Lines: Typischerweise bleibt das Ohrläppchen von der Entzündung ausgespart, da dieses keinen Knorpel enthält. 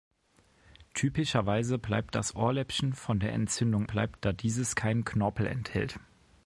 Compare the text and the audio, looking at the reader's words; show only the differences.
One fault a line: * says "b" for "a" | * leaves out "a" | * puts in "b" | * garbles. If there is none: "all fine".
* says "bleibt" for "ausgespart"